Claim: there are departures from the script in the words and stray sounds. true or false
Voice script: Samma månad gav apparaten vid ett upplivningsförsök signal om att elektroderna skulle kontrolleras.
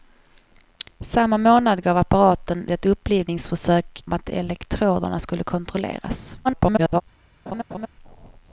true